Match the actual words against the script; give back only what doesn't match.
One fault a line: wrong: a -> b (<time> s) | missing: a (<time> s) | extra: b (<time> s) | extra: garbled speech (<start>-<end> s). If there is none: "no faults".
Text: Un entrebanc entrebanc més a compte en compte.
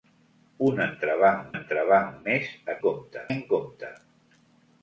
no faults